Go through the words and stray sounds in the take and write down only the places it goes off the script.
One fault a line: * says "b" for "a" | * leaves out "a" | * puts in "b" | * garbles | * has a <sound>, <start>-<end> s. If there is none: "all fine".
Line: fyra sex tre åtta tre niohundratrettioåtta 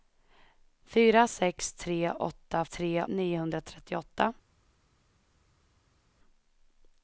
all fine